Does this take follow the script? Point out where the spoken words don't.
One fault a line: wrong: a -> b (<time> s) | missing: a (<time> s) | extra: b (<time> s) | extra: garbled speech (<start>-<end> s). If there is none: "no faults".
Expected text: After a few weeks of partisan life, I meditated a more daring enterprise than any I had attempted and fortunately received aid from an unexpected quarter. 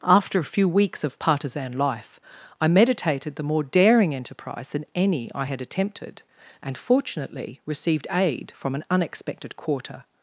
wrong: a -> the (3.4 s)